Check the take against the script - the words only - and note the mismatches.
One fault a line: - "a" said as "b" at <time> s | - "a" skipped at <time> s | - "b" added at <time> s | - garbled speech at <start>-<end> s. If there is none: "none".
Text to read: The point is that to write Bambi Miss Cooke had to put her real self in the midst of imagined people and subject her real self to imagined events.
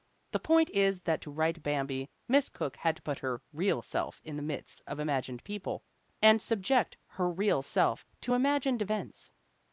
none